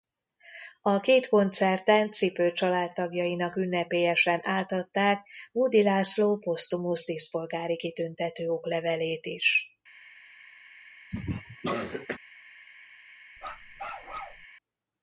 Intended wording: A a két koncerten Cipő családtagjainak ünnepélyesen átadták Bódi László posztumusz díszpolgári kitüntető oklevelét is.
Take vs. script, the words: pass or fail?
fail